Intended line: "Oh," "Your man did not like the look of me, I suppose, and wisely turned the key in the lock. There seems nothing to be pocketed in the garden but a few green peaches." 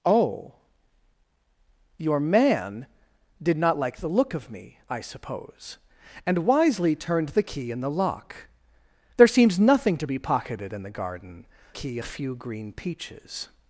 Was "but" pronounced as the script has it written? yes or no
no